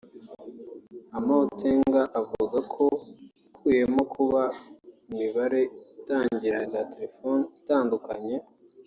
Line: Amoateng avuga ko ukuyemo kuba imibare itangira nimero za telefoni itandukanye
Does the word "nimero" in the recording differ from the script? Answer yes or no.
yes